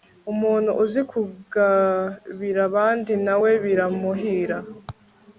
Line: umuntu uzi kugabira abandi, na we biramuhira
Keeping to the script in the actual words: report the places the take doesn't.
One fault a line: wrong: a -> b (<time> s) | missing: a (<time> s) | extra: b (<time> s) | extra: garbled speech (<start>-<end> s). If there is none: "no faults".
no faults